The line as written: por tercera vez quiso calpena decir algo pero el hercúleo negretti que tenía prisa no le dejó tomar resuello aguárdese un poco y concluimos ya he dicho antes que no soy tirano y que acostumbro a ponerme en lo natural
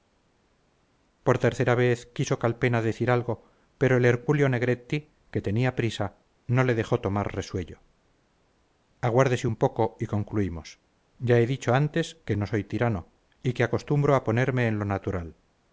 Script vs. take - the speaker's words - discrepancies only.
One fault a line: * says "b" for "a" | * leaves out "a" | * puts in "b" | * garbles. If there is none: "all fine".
all fine